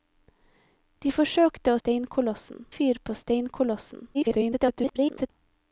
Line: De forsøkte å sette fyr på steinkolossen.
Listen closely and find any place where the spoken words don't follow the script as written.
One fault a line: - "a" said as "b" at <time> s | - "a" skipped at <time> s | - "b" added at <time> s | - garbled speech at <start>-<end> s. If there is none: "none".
- "sette" said as "steinkolossen" at 1.8 s
- garbled speech at 4.1-5.3 s